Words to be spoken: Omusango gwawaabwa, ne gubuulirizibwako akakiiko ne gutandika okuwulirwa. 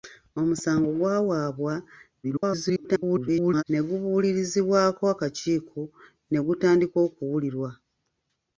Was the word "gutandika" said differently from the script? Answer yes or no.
no